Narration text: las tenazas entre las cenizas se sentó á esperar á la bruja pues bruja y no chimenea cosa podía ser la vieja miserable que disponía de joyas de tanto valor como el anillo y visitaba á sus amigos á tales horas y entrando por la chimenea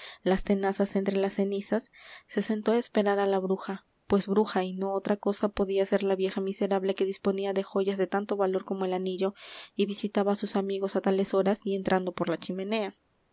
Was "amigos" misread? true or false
false